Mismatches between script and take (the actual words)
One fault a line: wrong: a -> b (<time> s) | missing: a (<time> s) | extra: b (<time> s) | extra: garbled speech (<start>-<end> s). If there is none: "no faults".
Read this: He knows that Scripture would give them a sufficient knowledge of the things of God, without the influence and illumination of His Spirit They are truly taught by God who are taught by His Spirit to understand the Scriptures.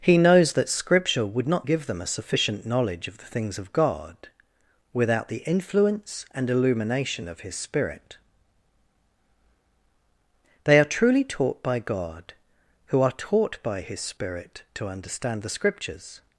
extra: not (1.5 s)